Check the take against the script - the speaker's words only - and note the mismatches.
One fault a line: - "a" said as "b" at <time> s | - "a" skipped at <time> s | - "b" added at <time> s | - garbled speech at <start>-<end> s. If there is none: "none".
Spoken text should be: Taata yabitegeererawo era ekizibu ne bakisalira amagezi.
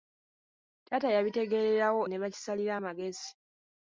- "era ekizibu" skipped at 2.0 s